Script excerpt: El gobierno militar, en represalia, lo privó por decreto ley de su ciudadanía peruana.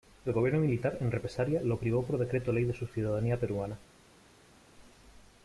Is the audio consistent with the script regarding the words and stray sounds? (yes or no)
yes